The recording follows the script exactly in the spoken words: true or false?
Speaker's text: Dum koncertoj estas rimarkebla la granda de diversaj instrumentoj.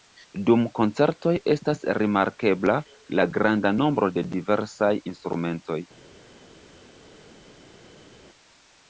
false